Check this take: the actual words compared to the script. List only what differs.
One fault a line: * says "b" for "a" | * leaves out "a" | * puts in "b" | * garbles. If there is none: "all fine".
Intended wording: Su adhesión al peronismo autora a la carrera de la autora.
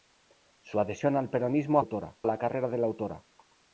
all fine